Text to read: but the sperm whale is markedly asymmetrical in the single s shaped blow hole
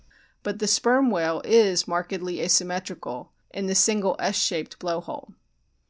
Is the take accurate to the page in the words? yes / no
yes